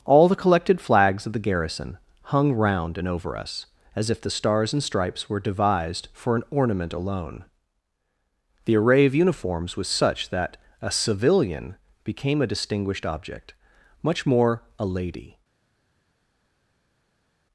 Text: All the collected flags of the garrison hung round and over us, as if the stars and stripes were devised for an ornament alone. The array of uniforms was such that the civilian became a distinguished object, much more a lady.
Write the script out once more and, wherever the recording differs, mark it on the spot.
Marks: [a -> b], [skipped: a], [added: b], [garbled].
All the collected flags of the garrison hung round and over us, as if the stars and stripes were devised for an ornament alone. The array of uniforms was such that [the -> a] civilian became a distinguished object, much more a lady.